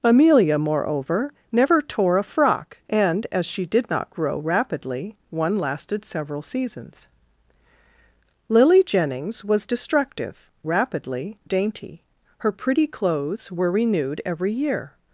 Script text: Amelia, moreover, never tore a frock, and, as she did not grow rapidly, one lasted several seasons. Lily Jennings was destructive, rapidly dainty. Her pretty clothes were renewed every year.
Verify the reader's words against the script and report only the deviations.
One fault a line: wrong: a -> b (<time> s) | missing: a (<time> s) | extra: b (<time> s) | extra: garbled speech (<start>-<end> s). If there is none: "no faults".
no faults